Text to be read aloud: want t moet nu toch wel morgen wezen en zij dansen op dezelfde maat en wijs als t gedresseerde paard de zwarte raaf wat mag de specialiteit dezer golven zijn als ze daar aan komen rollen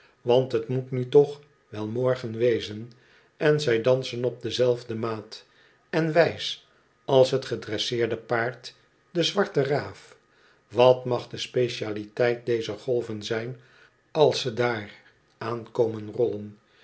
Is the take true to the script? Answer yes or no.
yes